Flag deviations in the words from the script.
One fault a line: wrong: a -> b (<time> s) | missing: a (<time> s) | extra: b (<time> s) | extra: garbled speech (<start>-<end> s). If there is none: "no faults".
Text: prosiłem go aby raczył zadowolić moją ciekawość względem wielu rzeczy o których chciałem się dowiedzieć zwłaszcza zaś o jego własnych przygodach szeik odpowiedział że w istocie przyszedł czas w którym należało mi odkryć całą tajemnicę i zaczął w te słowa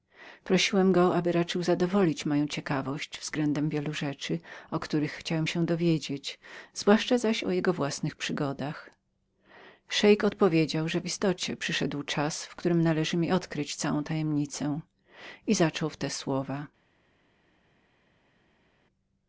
no faults